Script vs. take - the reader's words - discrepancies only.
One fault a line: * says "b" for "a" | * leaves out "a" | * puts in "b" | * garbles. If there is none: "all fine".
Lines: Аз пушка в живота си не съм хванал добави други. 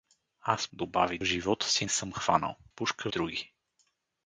* says "добави" for "пушка"
* leaves out "не"
* says "пушка" for "добави"